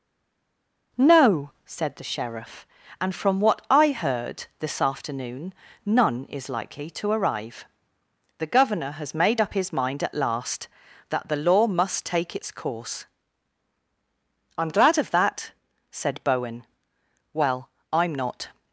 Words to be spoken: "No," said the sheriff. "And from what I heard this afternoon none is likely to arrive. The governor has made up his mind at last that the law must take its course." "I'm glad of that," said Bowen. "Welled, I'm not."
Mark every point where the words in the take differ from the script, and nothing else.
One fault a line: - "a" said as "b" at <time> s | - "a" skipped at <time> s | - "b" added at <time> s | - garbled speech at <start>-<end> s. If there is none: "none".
- "Welled" said as "Well" at 17.3 s